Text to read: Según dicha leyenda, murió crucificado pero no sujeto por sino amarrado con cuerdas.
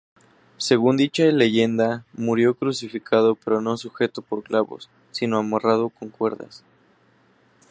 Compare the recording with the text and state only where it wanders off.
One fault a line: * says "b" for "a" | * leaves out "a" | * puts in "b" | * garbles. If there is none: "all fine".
* puts in "clavos"